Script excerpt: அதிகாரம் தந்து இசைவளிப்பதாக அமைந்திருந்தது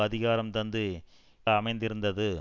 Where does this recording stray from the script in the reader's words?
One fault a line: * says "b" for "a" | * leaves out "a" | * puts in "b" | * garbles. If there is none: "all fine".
* leaves out "இசைவளிப்பதாக"